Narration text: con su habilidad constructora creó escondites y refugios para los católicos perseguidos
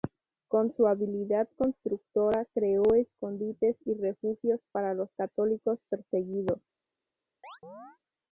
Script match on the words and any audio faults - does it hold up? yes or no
no